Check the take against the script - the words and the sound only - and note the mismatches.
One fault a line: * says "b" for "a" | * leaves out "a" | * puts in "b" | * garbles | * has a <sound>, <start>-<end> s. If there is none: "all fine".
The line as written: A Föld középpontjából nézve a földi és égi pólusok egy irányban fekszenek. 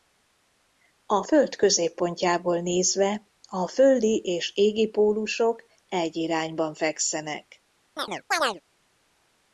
* has a chirp, 8.0-8.6 s